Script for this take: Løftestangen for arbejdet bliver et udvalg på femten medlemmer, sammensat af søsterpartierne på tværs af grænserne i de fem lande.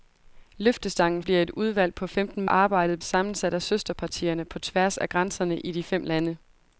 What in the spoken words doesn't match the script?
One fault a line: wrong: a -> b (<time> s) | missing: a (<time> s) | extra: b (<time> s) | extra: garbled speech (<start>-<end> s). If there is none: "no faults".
missing: for arbejdet (1.2 s)
wrong: medlemmer -> arbejdet (2.5 s)